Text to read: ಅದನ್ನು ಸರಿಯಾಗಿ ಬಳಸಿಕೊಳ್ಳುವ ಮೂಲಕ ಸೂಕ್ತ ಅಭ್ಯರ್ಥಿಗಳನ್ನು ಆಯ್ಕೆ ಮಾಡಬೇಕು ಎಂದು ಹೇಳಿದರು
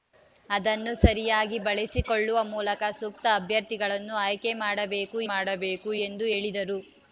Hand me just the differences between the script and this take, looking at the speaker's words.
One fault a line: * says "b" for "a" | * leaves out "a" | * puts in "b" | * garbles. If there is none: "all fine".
* puts in "ಮಾಡಬೇಕು"